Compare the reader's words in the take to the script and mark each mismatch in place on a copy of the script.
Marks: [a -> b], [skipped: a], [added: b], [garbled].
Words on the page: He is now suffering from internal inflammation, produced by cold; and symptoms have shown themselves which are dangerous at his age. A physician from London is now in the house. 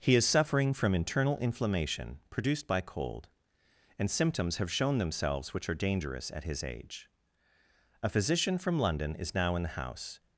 He is [skipped: now] suffering from internal inflammation, produced by cold; and symptoms have shown themselves which are dangerous at his age. A physician from London is now in the house.